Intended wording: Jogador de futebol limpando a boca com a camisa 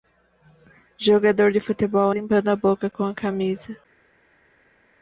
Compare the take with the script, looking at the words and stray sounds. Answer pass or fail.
pass